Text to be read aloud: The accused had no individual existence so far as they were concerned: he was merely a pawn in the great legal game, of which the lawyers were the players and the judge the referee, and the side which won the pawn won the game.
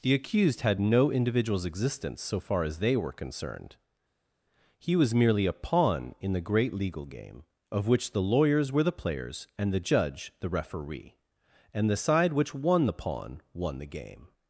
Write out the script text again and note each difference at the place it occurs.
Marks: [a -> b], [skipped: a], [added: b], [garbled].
The accused had no [individual -> individuals] existence so far as they were concerned: he was merely a pawn in the great legal game, of which the lawyers were the players and the judge the referee, and the side which won the pawn won the game.